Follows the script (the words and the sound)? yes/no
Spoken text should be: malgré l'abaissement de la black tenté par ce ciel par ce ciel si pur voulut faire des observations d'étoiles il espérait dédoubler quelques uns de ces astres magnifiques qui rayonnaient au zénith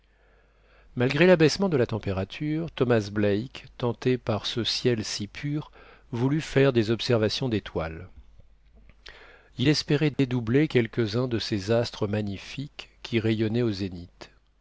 no